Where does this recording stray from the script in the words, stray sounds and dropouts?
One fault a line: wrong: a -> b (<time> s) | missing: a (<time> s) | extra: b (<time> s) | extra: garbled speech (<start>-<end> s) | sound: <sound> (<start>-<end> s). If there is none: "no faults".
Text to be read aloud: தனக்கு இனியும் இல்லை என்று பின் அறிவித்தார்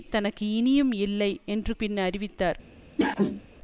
sound: cough (3.0-3.4 s)